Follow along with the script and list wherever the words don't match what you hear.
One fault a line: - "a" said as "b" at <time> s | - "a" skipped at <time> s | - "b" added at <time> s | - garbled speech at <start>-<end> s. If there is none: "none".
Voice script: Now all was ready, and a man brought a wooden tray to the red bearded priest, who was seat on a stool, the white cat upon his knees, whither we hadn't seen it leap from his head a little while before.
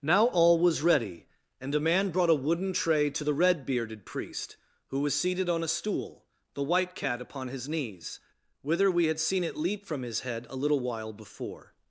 - "seat" said as "seated" at 5.1 s
- "hadn't" said as "had" at 9.1 s